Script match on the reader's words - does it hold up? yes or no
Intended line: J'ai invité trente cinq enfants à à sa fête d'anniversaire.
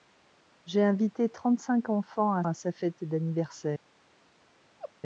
yes